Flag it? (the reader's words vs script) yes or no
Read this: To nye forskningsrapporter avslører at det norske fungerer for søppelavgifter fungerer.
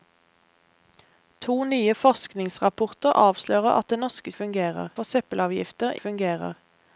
no